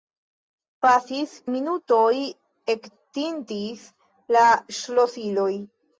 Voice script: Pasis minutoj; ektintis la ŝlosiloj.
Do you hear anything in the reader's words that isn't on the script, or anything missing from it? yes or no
no